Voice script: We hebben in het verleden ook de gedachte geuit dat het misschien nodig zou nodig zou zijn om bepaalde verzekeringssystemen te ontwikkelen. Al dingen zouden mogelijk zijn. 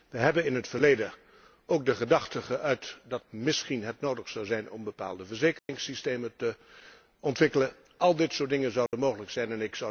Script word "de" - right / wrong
right